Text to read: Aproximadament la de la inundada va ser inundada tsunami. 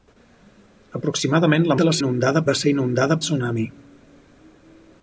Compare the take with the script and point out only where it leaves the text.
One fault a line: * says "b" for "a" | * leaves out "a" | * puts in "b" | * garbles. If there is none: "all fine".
all fine